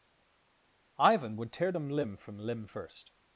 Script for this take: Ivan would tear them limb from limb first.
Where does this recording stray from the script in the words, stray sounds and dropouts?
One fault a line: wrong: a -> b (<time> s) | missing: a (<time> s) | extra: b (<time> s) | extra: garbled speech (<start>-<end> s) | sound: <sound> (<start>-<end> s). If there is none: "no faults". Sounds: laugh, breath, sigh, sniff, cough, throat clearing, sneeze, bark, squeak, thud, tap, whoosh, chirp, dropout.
no faults